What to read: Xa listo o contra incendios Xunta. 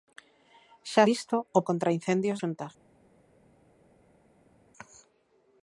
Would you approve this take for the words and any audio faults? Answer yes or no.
yes